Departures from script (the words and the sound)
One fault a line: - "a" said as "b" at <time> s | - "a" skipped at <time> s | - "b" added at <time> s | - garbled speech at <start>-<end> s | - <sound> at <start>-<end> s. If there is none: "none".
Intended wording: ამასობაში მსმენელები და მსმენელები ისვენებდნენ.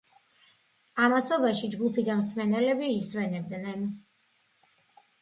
- "მსმენელები" said as "ჯგუფი" at 1.7 s